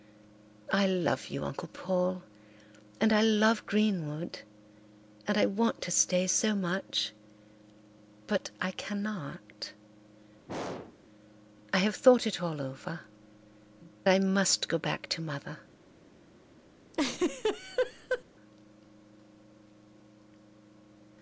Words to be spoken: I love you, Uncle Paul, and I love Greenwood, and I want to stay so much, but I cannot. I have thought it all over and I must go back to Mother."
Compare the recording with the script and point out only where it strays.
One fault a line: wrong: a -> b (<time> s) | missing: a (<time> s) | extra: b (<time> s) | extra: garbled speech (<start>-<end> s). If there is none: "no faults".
missing: and (13.0 s)